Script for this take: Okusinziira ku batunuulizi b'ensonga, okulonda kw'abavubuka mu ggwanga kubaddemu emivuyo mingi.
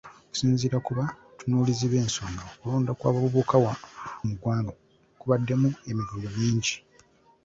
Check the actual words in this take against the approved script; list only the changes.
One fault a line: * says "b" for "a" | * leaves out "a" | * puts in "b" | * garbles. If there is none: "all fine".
all fine